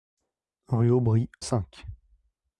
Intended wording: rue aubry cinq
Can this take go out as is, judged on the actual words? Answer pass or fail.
pass